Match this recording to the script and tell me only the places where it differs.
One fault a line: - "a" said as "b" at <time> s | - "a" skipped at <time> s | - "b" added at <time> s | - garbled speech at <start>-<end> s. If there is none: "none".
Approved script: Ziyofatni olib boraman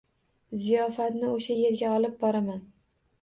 - "o‘sha yerga" added at 1.3 s